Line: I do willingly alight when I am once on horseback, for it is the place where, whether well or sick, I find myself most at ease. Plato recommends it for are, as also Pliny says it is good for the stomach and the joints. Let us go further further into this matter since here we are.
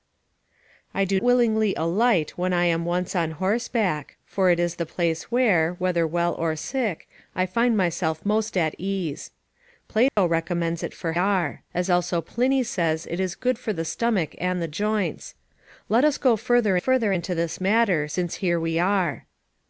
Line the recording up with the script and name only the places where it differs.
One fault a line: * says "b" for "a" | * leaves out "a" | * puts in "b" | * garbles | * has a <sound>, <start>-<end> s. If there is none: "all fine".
* has a dropout, 10.1-10.2 s